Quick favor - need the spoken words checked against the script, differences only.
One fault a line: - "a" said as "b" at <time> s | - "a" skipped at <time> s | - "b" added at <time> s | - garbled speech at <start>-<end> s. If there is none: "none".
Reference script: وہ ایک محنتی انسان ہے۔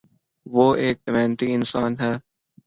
none